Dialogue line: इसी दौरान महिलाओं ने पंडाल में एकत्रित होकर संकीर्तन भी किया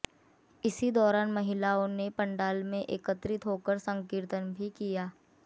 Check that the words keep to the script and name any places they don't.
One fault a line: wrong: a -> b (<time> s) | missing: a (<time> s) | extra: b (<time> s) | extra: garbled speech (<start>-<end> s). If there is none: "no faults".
no faults